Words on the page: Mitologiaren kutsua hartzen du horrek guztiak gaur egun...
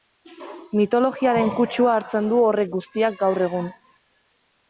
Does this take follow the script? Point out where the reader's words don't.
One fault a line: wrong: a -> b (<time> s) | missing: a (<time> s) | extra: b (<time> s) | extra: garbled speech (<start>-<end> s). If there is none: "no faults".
no faults